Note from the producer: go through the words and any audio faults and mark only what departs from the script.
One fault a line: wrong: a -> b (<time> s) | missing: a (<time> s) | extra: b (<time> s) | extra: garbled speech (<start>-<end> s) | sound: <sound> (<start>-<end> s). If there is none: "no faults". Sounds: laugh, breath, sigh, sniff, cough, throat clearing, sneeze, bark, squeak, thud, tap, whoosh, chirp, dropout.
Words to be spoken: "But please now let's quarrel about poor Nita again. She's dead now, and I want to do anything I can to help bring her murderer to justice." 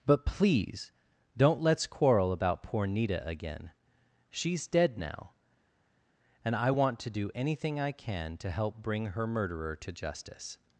wrong: now -> don't (1.4 s)